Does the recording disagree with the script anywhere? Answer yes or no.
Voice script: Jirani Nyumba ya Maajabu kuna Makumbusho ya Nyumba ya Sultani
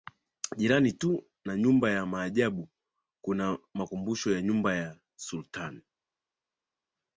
yes